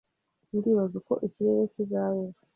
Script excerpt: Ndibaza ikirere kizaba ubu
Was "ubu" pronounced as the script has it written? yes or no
no